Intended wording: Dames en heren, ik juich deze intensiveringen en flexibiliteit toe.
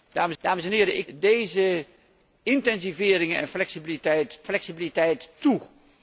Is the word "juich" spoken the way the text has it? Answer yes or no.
no